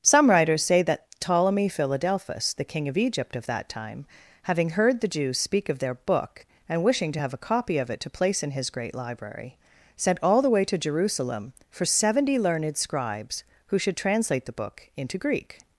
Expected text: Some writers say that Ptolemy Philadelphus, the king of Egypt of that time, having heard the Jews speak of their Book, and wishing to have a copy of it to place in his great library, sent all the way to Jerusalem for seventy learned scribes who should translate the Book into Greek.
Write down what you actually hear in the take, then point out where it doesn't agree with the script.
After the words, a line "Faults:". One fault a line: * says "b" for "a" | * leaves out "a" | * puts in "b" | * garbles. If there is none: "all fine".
Some writers say that Ptolemy Philadelphus, the king of Egypt of that time, having heard the Jews speak of their Book, and wishing to have a copy of it to place in his great library, sent all the way to Jerusalem for seventy learned scribes who should translate the Book into Greek.
Faults:
all fine